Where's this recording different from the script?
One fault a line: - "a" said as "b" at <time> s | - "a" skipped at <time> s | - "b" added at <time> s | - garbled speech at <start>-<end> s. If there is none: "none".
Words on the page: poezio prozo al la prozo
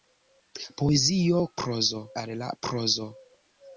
none